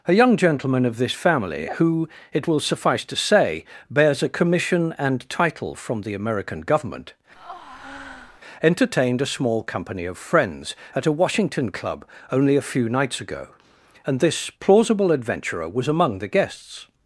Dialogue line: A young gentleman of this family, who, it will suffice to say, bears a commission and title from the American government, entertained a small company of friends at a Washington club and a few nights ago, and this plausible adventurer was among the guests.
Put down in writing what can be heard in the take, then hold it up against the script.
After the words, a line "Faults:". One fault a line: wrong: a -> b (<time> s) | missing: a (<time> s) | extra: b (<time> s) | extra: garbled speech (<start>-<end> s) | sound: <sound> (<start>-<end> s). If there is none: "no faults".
A young gentleman of this family, who, it will suffice to say, bears a commission and title from the American government, entertained a small company of friends at a Washington club only a few nights ago, and this plausible adventurer was among the guests.
Faults:
sound: breath (7.4-8.4 s)
wrong: and -> only (12.3 s)